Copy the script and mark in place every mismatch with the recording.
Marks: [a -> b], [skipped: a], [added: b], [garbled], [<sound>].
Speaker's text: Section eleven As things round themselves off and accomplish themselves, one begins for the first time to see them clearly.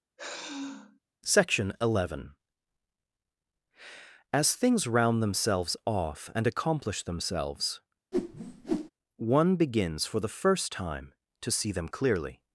[sigh] Section eleven As things round themselves off and accomplish themselves, [whoosh] one begins for the first time to see them clearly.